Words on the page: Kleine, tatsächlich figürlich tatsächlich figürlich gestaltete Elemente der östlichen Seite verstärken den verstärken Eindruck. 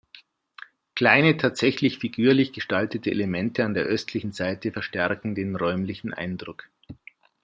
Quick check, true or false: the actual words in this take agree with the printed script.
false